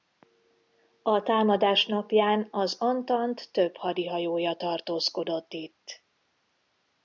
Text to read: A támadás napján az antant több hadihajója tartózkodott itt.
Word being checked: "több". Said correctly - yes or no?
yes